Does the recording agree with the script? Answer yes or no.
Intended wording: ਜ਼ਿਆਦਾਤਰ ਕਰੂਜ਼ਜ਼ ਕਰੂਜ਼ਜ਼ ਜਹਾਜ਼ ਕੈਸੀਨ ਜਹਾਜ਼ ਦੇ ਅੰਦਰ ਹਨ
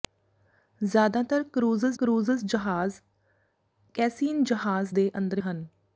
yes